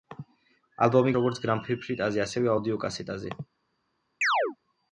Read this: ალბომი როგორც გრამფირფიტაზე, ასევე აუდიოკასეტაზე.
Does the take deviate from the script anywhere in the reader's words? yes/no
no